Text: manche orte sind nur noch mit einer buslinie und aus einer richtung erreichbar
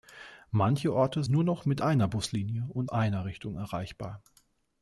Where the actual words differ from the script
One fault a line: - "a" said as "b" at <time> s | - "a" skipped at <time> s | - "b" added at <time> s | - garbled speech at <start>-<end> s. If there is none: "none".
- "sind" skipped at 1.2 s
- "aus" skipped at 2.9 s